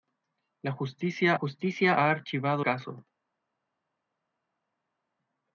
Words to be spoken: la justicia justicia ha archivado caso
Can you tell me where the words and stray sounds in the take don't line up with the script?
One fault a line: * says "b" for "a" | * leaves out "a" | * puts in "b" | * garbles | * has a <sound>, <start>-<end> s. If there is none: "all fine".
all fine